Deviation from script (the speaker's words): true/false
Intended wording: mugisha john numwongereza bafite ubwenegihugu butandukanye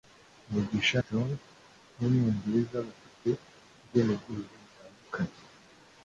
false